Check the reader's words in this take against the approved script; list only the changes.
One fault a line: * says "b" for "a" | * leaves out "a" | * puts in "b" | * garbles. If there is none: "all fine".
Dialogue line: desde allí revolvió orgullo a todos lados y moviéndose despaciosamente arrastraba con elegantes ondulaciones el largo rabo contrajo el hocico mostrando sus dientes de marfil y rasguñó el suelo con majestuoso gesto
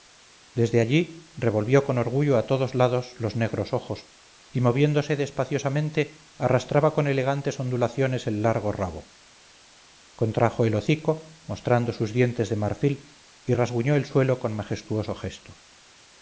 * puts in "con"
* puts in "los negros ojos"